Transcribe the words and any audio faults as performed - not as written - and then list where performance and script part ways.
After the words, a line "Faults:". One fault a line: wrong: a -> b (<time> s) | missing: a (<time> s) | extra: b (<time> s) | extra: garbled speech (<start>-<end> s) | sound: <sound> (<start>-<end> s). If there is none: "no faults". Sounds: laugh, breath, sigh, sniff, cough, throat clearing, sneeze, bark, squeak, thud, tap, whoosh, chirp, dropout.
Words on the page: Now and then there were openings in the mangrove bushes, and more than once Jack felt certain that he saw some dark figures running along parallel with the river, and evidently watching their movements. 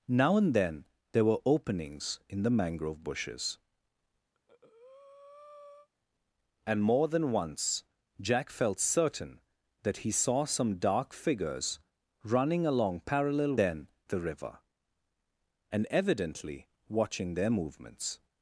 Now and then there were openings in the mangrove bushes, and more than once Jack felt certain that he saw some dark figures running along parallel then the river, and evidently watching their movements.
Faults:
sound: breath (4.3-5.9 s)
wrong: with -> then (13.6 s)